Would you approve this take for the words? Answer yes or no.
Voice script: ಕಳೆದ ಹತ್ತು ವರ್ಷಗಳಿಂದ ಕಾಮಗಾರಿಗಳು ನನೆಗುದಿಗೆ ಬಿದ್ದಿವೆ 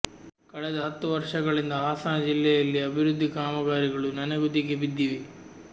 no